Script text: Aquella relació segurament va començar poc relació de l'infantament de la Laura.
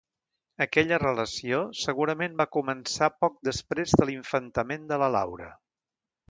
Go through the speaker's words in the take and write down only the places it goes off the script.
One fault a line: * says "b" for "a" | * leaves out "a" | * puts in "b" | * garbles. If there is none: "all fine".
* says "després" for "relació"